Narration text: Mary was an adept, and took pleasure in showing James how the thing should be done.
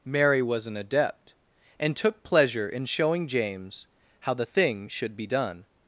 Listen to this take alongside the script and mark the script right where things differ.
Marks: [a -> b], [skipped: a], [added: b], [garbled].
Mary was an adept, and took pleasure in showing James how the thing should be done.